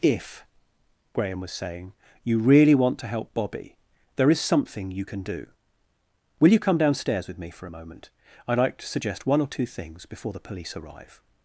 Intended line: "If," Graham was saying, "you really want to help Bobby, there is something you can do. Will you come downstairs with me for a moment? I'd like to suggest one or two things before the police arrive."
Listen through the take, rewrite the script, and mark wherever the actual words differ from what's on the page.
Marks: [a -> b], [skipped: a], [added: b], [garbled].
"If," Graham was saying, "you really want to help Bobby, there is something you can do. Will you come downstairs with me for a moment? I'd like to suggest one or two things before the police arrive."